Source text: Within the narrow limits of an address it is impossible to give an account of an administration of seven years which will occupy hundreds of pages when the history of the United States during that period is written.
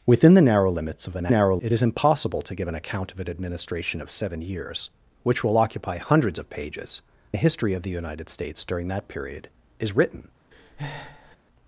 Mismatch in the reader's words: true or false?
true